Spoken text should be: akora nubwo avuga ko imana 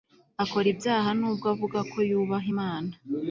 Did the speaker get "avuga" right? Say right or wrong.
right